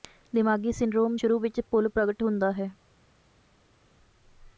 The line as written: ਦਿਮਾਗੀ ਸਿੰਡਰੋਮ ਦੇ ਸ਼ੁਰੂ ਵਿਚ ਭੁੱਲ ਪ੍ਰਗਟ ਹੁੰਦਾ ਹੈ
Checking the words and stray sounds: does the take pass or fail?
fail